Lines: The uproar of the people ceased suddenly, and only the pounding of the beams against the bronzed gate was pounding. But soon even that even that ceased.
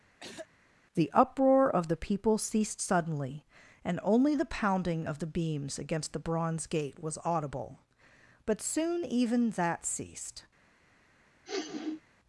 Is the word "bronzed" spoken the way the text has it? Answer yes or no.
no